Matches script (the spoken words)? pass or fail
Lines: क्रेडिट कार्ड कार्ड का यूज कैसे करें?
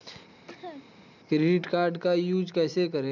fail